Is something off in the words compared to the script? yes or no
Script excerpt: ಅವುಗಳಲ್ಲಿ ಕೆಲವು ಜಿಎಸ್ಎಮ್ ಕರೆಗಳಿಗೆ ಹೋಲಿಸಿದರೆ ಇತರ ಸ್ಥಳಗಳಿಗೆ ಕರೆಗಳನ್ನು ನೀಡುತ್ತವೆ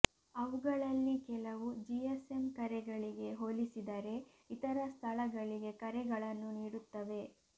no